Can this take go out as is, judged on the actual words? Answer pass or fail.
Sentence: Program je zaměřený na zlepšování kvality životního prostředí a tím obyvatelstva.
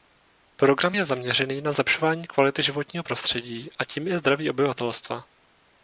fail